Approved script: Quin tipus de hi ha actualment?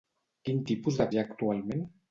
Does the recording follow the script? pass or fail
pass